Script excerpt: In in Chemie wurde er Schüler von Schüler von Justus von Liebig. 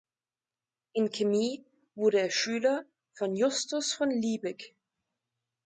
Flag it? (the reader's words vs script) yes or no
yes